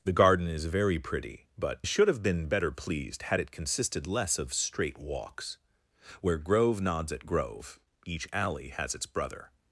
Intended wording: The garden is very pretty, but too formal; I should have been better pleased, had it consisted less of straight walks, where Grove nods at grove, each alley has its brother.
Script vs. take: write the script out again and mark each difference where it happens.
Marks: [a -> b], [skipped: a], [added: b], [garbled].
The garden is very pretty, but [skipped: too formal; I] should have been better pleased, had it consisted less of straight walks, where Grove nods at grove, each alley has its brother.